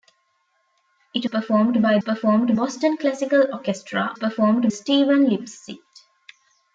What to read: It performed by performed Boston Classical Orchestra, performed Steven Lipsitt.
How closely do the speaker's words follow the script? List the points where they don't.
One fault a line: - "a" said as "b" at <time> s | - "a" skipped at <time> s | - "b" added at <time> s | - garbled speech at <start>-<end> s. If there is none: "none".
none